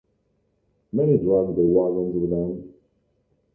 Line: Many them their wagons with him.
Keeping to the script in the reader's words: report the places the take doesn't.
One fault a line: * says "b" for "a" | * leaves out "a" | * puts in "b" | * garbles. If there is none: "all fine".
* says "dragged" for "them"
* says "them" for "him"